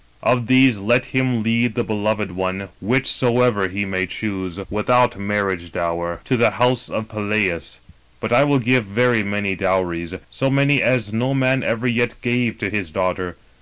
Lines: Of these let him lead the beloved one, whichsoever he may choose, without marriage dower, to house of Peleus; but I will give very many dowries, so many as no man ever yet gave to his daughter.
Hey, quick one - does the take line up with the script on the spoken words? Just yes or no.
no